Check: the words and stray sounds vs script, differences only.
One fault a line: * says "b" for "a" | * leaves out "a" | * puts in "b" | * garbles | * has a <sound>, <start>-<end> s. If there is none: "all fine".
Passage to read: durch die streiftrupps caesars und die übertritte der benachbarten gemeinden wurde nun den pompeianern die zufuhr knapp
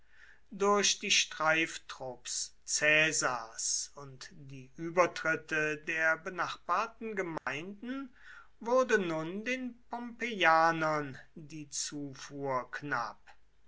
* has a dropout, 7.4-7.5 s